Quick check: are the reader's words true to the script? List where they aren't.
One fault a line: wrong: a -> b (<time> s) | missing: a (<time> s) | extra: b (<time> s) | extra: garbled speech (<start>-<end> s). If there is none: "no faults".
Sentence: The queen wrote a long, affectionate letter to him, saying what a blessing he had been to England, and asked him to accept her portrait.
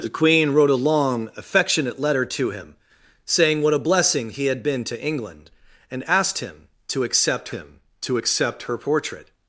extra: him to accept (7.5 s)